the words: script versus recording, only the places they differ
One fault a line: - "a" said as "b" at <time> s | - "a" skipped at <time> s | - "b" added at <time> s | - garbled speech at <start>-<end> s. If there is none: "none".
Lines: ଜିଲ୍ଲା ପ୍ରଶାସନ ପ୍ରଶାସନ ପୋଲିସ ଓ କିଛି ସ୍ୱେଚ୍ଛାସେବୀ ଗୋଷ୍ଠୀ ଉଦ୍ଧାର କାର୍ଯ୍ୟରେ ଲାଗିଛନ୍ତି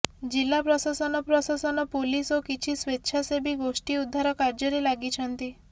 none